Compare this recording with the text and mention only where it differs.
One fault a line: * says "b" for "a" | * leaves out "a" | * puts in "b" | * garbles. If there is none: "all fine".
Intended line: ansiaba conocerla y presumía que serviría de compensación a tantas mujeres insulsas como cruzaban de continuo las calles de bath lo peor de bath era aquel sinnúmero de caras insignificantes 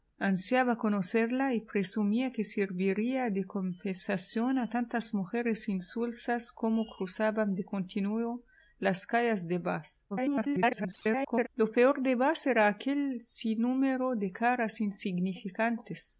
* garbles